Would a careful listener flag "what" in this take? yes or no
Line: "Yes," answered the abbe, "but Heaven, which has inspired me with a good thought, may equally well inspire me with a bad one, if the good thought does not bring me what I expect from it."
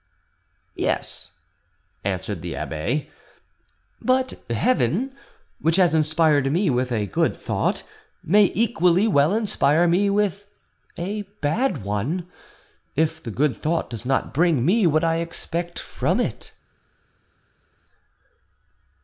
no